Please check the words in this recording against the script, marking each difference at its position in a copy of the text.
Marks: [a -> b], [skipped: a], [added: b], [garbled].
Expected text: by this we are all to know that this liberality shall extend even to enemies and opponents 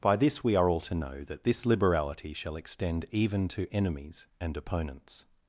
by this we are all to know that this liberality shall extend even to enemies and opponents